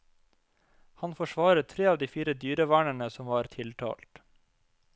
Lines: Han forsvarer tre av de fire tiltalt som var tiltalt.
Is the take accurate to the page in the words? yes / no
no